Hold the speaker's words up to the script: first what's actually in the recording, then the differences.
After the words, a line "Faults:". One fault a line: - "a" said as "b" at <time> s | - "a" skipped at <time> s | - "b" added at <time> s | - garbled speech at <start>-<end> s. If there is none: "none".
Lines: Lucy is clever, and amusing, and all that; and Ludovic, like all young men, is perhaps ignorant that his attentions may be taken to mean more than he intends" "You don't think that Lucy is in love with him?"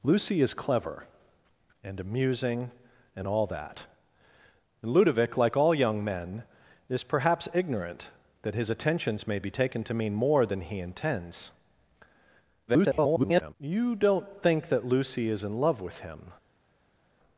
Lucy is clever, and amusing, and all that; and Ludovic, like all young men, is perhaps ignorant that his attentions may be taken to mean more than he intends" [garbled] "You don't think that Lucy is in love with him?"
Faults:
- garbled speech at 12.7-13.5 s